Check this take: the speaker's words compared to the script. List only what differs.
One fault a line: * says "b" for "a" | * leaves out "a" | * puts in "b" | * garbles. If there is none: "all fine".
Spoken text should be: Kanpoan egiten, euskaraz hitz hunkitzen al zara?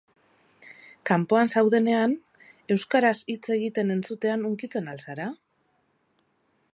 * says "zaudenean" for "egiten"
* puts in "egiten entzutean"